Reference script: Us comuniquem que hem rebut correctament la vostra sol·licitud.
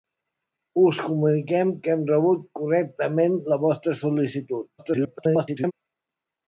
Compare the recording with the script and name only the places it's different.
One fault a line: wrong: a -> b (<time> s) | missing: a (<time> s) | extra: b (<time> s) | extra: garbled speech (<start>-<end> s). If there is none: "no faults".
extra: garbled speech (4.8-5.7 s)